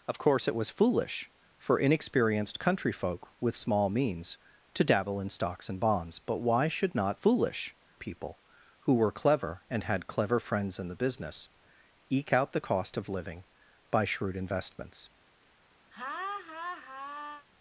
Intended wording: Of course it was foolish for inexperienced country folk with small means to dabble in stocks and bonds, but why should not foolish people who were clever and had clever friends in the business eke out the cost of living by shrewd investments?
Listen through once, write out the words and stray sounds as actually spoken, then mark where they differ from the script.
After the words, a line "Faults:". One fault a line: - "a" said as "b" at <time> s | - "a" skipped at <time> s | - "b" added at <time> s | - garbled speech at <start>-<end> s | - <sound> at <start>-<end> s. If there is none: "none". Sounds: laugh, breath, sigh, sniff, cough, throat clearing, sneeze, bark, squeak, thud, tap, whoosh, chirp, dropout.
Of course it was foolish for inexperienced country folk with small means to dabble in stocks and bonds, but why should not foolish people who were clever and had clever friends in the business eke out the cost of living by shrewd investments?
Faults:
- laugh at 15.9-17.5 s